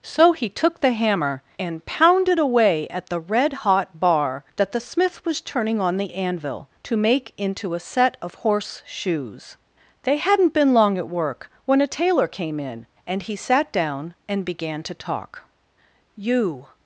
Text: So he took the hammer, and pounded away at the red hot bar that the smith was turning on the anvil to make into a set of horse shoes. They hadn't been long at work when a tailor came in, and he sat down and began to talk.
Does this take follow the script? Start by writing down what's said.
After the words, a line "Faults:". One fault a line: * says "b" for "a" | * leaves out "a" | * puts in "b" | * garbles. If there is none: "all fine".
So he took the hammer, and pounded away at the red hot bar that the smith was turning on the anvil to make into a set of horse shoes. They hadn't been long at work when a tailor came in, and he sat down and began to talk. 'You
Faults:
* puts in "You"